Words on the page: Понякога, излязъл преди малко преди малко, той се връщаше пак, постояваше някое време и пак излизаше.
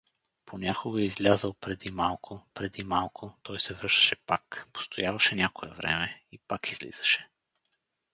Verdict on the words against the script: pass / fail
pass